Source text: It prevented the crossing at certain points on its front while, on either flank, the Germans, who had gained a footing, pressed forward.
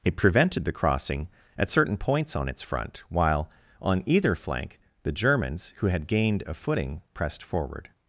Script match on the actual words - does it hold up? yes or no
yes